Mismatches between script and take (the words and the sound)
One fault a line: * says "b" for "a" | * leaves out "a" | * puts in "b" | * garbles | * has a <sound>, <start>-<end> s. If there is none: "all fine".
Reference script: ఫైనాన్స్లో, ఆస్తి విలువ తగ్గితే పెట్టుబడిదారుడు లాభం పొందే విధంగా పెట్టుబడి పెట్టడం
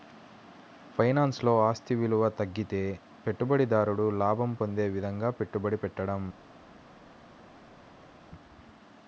all fine